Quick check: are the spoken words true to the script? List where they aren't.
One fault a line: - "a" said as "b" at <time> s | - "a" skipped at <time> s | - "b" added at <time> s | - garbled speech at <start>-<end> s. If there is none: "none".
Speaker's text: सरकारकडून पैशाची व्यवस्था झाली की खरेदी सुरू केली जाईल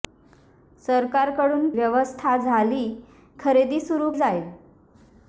- "पैशाची" skipped at 1.7 s
- "की" skipped at 2.8 s
- "केली" skipped at 4.1 s